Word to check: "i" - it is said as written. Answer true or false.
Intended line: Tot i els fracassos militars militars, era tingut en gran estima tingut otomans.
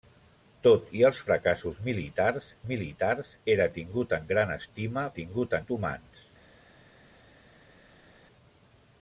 true